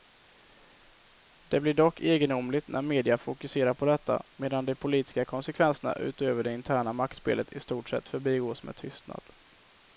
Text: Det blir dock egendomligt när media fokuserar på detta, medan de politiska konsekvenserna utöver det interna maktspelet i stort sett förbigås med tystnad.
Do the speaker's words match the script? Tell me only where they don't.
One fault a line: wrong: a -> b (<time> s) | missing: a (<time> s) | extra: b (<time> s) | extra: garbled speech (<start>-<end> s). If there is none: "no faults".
no faults